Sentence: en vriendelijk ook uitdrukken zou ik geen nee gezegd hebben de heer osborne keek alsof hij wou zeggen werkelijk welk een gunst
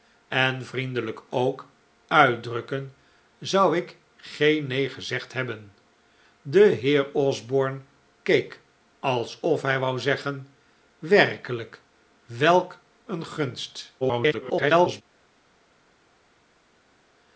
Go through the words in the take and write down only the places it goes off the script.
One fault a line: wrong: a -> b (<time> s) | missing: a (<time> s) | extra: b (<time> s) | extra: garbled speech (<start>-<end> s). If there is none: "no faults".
extra: garbled speech (14.0-15.0 s)